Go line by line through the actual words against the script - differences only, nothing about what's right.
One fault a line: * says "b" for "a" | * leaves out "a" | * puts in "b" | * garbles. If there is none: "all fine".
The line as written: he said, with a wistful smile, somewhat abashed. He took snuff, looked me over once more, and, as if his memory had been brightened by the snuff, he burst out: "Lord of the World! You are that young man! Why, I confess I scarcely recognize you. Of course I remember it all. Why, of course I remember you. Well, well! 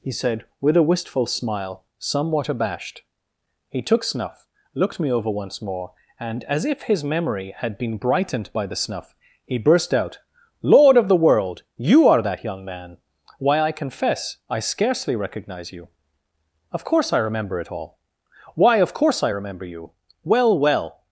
all fine